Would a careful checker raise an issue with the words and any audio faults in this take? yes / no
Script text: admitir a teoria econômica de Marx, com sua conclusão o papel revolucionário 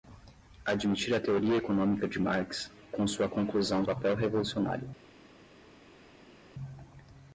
no